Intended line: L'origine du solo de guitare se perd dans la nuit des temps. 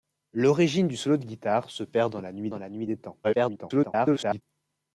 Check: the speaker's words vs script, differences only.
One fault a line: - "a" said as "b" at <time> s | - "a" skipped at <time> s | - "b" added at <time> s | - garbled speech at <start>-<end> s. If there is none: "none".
- "dans la nuit" added at 2.5 s
- garbled speech at 3.2-4.4 s